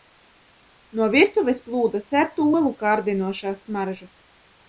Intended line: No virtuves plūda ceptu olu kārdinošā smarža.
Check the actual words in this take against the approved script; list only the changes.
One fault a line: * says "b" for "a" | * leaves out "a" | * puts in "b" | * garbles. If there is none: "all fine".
all fine